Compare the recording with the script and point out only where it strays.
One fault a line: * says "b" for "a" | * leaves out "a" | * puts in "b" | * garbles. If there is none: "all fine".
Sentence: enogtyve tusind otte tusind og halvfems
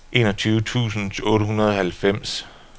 * says "hundrede" for "tusind"